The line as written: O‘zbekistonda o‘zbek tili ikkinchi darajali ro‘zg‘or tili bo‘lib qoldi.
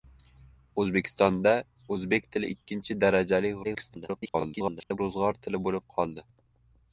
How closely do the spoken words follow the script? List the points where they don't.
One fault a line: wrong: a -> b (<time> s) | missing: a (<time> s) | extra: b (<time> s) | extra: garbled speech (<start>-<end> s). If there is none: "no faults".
extra: garbled speech (3.6-5.0 s)